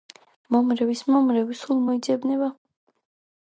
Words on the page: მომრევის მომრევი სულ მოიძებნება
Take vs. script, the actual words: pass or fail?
pass